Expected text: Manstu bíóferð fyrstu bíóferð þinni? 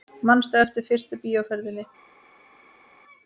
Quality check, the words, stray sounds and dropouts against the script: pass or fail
fail